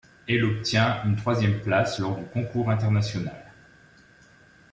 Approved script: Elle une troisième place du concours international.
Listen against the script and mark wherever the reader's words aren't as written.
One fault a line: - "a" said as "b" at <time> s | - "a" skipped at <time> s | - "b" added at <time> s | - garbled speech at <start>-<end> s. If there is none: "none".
- "obtient" added at 0.5 s
- "lors" added at 2.0 s